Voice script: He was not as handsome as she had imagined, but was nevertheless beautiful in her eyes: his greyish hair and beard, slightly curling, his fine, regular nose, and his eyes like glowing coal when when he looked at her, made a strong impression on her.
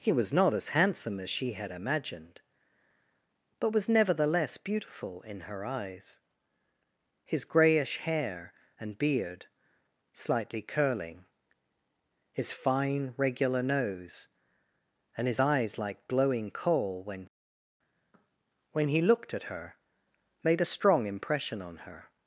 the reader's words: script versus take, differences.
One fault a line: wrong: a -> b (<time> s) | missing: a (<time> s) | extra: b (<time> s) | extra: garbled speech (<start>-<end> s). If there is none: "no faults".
no faults